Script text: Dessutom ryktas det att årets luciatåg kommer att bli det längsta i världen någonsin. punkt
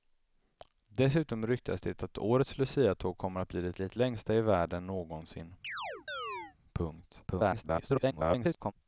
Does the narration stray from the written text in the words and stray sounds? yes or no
yes